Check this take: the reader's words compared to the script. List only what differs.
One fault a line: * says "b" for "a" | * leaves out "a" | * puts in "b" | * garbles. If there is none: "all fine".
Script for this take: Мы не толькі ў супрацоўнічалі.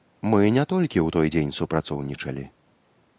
* puts in "той дзень"